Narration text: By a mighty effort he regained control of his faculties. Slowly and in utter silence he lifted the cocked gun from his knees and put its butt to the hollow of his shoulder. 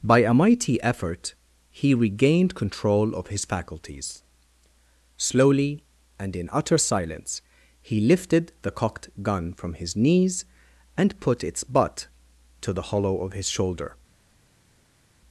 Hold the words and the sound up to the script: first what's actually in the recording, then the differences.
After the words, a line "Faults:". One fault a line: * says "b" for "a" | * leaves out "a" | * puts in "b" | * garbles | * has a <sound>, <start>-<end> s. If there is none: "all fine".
By a mighty effort he regained control of his faculties. Slowly and in utter silence he lifted the cocked gun from his knees and put its butt to the hollow of his shoulder.
Faults:
all fine